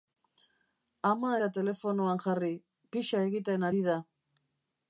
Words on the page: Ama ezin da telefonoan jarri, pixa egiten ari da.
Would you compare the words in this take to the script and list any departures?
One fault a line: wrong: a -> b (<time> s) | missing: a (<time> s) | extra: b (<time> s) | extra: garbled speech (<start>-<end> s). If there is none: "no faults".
missing: ezin (1.3 s)